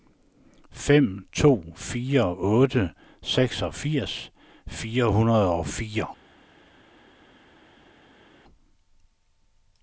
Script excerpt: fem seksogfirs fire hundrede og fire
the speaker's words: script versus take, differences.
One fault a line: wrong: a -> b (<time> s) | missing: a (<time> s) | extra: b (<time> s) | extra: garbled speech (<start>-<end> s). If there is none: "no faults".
extra: to fire otte (1.3 s)